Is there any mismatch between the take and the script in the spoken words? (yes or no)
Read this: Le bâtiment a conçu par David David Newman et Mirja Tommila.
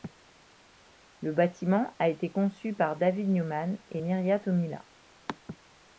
yes